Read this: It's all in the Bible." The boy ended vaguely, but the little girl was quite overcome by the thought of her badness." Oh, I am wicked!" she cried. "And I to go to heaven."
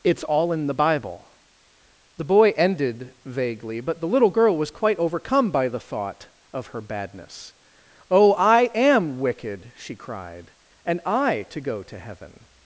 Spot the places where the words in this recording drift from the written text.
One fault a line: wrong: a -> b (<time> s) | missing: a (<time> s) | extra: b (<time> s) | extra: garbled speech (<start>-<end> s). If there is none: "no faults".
no faults